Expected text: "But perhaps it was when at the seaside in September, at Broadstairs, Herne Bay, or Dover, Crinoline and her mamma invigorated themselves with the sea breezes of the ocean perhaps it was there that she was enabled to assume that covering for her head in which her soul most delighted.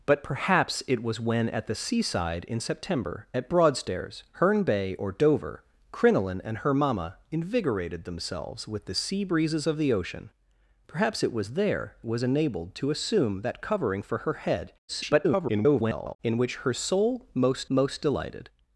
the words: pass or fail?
fail